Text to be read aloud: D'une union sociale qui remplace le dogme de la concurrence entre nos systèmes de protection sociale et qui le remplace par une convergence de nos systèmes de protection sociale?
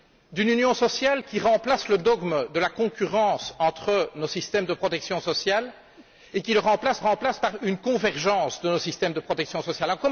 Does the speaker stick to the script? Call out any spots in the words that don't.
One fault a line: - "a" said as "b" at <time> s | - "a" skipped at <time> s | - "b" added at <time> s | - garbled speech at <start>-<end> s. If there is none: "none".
- "remplace" added at 7.0 s